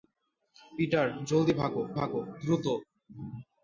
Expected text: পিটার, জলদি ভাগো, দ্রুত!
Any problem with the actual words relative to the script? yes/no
yes